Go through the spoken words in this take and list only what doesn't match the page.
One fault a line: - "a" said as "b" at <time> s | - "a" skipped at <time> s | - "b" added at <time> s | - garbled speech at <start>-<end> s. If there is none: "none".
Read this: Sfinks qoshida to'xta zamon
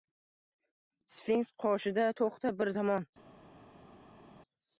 - "bir" added at 2.6 s